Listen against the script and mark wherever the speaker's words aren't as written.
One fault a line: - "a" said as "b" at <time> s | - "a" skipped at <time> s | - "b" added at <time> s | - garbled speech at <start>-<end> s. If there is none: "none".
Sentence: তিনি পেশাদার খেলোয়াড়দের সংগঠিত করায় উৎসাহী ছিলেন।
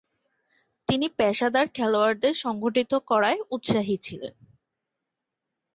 none